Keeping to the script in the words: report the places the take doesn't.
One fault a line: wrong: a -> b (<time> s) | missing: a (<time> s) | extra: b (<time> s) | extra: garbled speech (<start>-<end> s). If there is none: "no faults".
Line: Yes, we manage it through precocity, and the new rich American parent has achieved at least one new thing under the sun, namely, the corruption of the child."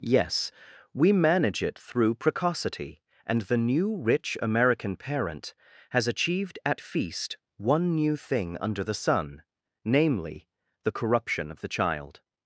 wrong: least -> feast (6.8 s)